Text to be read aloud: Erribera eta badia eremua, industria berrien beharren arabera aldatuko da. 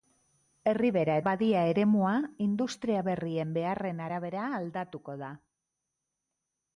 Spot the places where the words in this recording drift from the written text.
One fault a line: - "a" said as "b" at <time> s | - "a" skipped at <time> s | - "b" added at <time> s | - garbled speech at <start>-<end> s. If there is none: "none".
- "eta" skipped at 1.2 s